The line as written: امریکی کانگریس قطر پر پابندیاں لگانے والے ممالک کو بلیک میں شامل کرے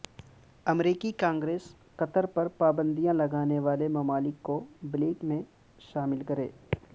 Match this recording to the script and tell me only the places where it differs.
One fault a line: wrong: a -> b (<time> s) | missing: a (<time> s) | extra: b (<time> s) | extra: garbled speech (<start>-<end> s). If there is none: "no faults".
no faults